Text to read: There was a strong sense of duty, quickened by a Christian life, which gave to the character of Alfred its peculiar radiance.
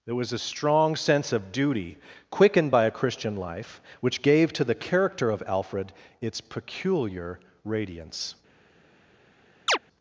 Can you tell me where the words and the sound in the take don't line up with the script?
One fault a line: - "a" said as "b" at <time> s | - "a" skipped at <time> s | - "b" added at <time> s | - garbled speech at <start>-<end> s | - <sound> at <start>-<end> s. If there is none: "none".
- chirp at 9.7-9.8 s